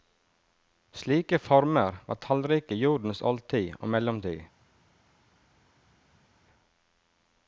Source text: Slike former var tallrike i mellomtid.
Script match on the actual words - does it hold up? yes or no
no